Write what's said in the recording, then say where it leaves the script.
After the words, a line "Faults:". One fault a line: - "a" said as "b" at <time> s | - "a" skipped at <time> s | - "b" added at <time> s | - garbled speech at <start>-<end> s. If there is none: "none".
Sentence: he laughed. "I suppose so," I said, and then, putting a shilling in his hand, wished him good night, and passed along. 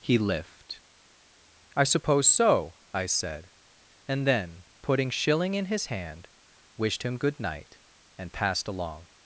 he lift. "I suppose so," I said, and then, putting shilling in his hand, wished him good night, and passed along.
Faults:
- "laughed" said as "lift" at 0.2 s
- "a" skipped at 5.1 s